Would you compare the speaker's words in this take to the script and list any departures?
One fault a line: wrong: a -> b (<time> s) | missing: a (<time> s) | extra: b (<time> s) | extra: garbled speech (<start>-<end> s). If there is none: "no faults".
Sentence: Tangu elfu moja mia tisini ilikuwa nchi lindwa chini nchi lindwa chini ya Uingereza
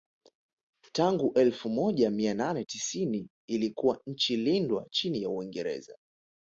extra: nane (2.3 s)
missing: nchi lindwa chini (5.2 s)